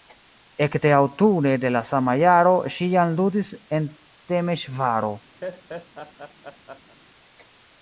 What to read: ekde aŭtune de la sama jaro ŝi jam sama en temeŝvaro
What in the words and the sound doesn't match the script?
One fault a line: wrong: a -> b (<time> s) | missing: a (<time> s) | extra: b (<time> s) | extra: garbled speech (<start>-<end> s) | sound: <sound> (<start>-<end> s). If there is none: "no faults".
wrong: sama -> ludis (3.2 s)
sound: laugh (5.4-7.0 s)